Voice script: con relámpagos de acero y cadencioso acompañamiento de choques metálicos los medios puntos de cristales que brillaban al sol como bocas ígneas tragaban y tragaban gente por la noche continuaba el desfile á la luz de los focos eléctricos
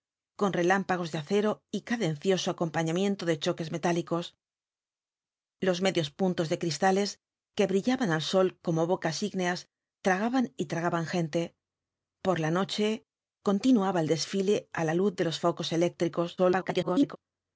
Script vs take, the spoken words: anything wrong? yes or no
yes